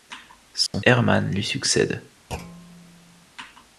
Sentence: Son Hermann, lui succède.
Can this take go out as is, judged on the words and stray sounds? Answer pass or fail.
fail